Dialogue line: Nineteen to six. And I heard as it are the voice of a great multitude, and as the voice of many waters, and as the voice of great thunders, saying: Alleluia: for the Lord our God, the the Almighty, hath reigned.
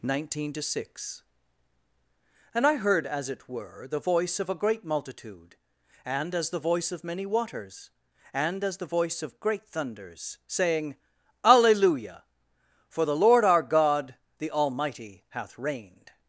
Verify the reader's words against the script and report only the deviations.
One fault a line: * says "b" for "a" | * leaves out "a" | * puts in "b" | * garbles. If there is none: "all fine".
* says "were" for "are"
* leaves out "the"